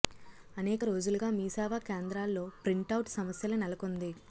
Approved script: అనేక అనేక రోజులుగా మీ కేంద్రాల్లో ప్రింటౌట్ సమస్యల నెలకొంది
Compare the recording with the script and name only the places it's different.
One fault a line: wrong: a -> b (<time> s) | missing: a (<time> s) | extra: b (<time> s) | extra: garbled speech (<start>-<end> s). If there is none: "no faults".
missing: అనేక (0.8 s)
extra: సేవా (1.5 s)